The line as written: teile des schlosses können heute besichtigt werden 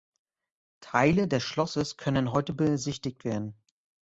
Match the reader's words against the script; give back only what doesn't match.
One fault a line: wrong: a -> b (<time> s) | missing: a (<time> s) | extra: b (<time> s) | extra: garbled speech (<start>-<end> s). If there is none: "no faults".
no faults